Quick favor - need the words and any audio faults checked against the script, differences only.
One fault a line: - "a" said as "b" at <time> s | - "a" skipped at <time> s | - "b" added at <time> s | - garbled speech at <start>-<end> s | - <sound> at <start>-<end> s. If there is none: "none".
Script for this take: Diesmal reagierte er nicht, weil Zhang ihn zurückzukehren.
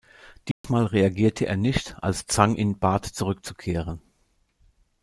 - dropout at 0.5-0.6 s
- "weil" said as "als" at 2.0 s
- "bat" added at 2.8 s